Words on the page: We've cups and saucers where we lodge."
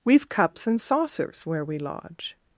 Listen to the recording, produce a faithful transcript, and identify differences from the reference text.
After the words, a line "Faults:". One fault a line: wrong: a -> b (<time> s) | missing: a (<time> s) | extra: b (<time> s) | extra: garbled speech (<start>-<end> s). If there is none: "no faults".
We've cups and saucers where we lodge."
Faults:
no faults